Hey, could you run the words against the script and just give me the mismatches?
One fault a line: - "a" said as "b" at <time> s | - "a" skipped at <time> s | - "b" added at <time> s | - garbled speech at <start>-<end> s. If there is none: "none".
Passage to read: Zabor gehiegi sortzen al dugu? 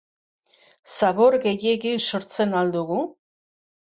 none